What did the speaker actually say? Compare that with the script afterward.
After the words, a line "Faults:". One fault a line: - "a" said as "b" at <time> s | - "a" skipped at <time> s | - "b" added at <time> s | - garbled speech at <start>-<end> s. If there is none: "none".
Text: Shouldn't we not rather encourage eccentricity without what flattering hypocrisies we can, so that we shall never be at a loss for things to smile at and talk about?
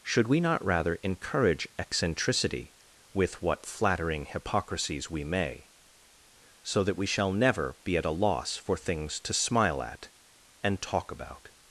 Should we not rather encourage eccentricity with what flattering hypocrisies we may, so that we shall never be at a loss for things to smile at and talk about?
Faults:
- "Shouldn't" said as "Should" at 0.0 s
- "without" said as "with" at 3.1 s
- "can" said as "may" at 5.2 s